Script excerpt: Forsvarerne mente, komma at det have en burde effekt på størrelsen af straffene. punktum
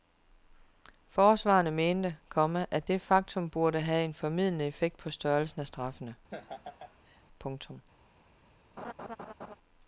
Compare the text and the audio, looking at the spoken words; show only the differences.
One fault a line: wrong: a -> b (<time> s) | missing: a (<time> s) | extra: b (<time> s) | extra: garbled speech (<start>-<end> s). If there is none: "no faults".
extra: faktum burde (3.0 s)
wrong: burde -> formildende (4.1 s)